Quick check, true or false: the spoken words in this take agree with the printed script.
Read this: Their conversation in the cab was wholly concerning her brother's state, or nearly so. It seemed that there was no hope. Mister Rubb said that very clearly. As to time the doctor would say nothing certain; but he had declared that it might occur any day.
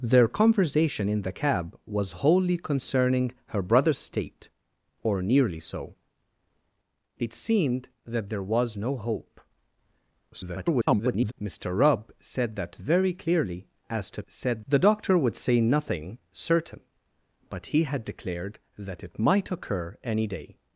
false